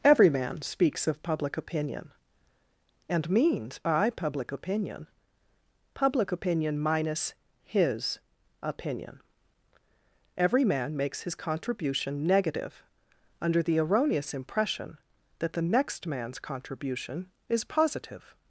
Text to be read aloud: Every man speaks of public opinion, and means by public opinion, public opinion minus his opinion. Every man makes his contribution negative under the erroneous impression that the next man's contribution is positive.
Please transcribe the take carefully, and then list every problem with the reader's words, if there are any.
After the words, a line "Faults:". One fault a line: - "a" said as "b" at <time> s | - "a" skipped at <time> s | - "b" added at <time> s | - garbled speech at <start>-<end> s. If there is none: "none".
Every man speaks of public opinion, and means by public opinion, public opinion minus his opinion. Every man makes his contribution negative under the erroneous impression that the next man's contribution is positive.
Faults:
none